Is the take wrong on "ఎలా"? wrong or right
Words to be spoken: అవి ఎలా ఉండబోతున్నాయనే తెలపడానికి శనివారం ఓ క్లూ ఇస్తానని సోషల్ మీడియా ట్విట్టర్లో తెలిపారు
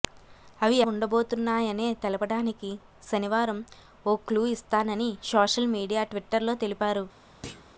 wrong